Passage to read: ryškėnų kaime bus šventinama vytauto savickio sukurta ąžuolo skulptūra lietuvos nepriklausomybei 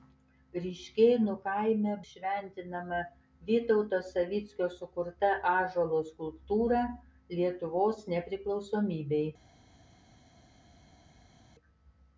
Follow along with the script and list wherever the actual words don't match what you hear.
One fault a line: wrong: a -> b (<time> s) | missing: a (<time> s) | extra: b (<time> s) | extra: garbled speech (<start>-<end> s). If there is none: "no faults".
missing: bus (1.9 s)